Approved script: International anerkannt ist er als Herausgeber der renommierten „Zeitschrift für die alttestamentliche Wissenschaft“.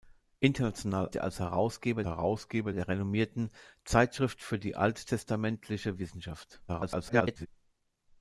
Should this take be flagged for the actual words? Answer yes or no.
yes